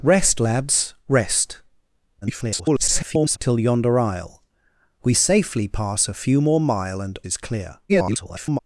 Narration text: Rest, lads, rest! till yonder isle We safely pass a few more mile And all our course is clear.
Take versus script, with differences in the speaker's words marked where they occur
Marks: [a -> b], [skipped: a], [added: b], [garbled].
Rest, lads, rest! [garbled] till yonder isle We safely pass a few more mile And [skipped: all our course] is clear. [garbled]